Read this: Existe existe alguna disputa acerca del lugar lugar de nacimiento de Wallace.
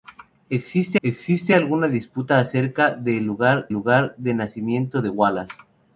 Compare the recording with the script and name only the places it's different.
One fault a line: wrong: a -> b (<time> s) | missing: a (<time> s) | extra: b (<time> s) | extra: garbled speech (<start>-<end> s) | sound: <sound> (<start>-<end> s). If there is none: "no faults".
no faults